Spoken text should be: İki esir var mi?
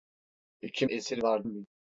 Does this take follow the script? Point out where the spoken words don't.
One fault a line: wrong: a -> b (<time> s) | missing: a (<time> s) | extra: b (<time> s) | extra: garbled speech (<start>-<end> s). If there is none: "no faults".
no faults